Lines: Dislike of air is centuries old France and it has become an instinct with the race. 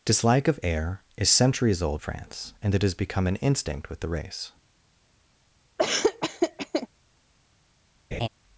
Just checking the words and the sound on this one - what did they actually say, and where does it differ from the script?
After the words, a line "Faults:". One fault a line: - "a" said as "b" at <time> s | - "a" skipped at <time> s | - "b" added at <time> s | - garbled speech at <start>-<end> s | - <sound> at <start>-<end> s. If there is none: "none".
Dislike of air is centuries old France and it has become an instinct with the race.
Faults:
- laugh at 5.8-6.9 s
- laugh at 8.1-8.3 s